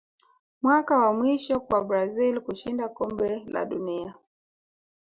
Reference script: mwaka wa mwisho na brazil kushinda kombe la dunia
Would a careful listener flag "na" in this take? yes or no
yes